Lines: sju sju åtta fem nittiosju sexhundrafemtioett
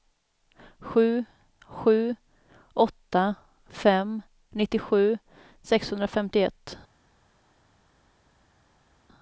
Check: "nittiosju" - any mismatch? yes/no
no